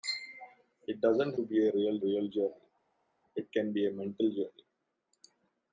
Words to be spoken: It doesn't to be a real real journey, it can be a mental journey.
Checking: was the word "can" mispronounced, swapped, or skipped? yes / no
no